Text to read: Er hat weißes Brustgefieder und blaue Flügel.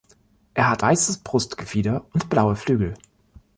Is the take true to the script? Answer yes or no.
yes